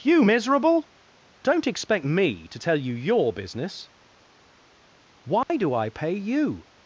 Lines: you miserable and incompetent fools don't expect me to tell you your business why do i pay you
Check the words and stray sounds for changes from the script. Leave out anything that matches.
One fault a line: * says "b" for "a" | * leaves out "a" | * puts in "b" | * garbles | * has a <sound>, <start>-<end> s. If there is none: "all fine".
* leaves out "and incompetent fools"
* has a dropout, 5.4-5.5 s